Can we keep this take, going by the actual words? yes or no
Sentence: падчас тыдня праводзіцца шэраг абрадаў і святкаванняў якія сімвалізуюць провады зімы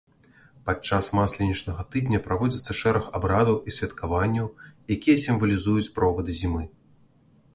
no